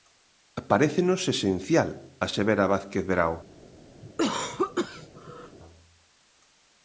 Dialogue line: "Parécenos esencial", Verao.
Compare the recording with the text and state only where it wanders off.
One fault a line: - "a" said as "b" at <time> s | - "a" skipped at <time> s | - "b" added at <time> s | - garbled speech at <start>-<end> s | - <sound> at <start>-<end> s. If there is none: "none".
- "asevera Vázquez" added at 2.2 s
- cough at 4.0-5.6 s